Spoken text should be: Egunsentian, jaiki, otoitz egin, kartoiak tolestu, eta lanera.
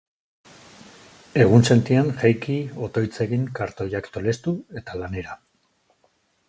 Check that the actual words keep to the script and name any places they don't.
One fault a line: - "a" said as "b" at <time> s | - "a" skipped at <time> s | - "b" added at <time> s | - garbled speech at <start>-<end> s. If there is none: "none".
none